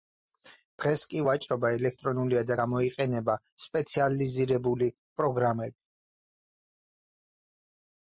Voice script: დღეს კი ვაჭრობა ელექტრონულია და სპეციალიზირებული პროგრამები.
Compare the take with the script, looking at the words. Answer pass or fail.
fail